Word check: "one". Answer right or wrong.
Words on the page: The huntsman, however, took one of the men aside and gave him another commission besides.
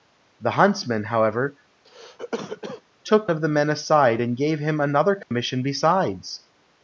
wrong